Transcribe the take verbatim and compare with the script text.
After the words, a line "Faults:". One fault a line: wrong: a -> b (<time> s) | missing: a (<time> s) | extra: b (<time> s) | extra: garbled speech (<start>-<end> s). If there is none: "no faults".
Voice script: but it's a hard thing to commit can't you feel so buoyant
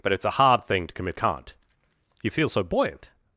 but it's a hard thing to commit can't you feel so buoyant
Faults:
no faults